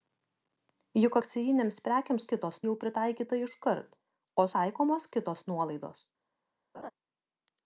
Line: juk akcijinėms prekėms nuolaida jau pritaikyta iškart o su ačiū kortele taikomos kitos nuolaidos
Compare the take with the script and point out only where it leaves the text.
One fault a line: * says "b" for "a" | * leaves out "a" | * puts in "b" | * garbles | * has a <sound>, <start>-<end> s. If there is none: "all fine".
* says "kitos" for "nuolaida"
* leaves out "su ačiū kortele"
* has a laugh, 6.7-6.9 s